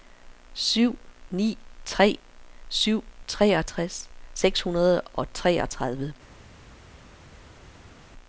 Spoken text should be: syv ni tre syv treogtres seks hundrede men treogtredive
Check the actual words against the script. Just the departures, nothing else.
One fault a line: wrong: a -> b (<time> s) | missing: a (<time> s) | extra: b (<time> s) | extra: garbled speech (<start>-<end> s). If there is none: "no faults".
wrong: men -> og (5.0 s)